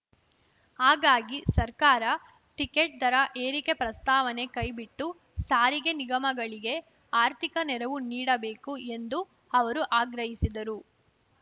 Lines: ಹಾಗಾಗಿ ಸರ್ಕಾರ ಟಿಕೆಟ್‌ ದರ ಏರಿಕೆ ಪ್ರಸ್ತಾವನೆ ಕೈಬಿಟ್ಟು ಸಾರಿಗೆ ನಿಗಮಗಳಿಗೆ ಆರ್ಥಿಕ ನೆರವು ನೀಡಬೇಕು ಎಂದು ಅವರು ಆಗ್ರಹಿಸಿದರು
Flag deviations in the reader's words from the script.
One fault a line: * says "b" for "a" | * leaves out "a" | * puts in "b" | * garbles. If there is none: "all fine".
all fine